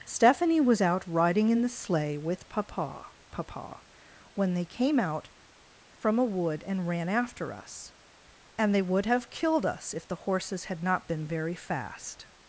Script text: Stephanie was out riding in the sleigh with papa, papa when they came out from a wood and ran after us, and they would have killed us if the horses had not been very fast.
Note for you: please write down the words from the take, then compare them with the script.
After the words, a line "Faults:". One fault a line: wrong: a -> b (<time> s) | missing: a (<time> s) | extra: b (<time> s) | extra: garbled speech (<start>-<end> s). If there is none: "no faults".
Stephanie was out riding in the sleigh with papa, papa when they came out from a wood and ran after us, and they would have killed us if the horses had not been very fast.
Faults:
no faults